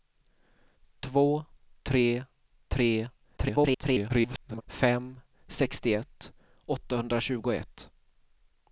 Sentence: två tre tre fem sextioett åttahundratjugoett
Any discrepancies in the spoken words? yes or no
yes